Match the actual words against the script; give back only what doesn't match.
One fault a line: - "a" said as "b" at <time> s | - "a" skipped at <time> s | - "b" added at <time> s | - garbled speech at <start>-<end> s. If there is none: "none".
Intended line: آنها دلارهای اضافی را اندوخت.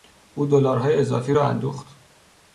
- "آنها" said as "او" at 0.3 s